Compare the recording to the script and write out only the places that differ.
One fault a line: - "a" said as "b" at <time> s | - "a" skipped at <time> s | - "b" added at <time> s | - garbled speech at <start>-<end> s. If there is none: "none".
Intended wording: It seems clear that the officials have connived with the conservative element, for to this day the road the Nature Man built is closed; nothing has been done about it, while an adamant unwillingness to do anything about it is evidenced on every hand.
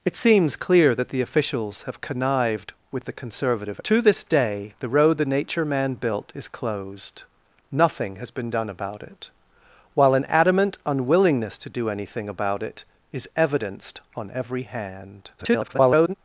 - "element for" skipped at 3.8 s
- garbled speech at 15.4-16.1 s